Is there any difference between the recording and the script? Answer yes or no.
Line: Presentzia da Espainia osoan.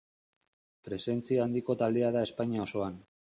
yes